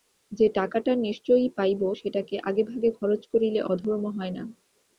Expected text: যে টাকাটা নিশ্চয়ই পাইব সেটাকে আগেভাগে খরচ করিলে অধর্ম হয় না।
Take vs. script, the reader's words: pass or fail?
pass